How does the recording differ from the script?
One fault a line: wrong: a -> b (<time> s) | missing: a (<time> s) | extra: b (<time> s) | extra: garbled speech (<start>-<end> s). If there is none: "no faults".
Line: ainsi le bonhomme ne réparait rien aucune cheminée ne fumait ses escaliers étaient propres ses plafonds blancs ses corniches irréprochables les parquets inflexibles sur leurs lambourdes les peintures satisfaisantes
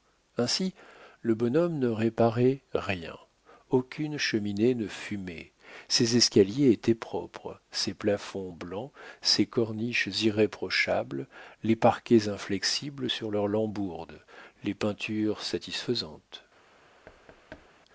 no faults